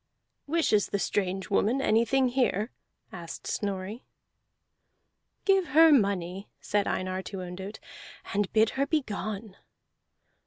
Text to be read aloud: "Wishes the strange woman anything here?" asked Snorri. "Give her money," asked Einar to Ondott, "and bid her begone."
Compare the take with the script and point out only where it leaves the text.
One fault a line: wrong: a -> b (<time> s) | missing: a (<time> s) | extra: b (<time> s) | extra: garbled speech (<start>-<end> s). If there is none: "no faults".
wrong: asked -> said (6.6 s)